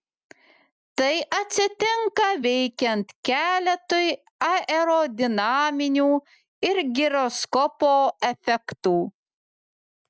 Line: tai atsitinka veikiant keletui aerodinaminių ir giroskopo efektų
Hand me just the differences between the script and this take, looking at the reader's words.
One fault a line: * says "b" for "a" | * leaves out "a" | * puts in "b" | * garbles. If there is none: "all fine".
all fine